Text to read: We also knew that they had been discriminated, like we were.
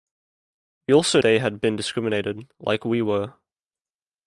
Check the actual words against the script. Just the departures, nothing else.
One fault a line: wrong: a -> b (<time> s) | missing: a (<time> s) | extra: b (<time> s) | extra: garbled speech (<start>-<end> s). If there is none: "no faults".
missing: knew that (1.2 s)